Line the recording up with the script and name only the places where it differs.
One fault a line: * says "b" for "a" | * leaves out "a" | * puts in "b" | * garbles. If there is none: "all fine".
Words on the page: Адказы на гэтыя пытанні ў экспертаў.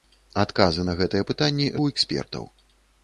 all fine